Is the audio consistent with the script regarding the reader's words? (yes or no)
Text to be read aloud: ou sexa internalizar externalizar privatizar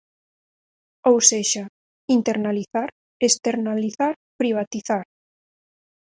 yes